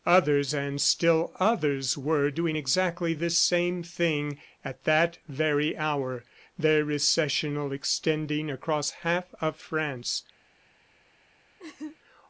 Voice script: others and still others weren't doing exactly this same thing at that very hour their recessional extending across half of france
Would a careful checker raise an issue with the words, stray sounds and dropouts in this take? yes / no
yes